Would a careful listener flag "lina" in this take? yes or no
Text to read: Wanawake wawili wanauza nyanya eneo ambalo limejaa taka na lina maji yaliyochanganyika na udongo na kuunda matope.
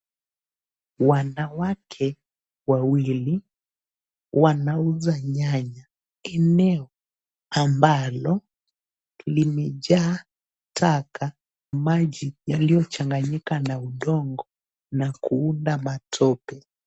yes